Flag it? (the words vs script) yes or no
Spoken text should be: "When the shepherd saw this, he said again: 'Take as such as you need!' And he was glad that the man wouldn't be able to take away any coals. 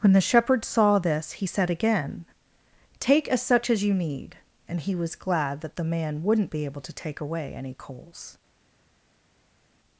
no